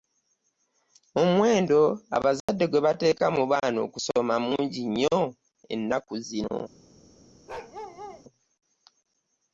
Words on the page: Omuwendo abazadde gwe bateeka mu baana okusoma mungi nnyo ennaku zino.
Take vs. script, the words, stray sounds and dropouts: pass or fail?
fail